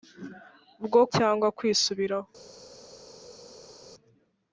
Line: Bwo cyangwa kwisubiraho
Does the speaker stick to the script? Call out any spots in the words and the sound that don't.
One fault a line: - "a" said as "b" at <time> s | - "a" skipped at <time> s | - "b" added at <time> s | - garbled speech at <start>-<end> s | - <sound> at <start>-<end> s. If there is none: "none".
none